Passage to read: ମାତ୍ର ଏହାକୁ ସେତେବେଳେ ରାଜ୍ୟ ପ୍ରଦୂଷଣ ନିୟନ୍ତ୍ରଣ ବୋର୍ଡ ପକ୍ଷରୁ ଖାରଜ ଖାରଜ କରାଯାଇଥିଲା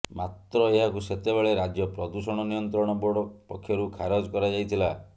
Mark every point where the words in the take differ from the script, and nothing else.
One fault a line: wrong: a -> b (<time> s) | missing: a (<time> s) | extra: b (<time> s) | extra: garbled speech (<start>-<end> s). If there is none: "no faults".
missing: ଖାରଜ (4.3 s)